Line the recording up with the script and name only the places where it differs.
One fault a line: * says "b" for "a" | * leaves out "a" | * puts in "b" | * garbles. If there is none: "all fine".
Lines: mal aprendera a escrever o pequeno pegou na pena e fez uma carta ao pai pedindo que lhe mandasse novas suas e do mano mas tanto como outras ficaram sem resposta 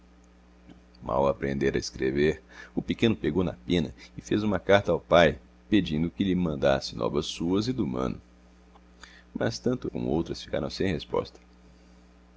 all fine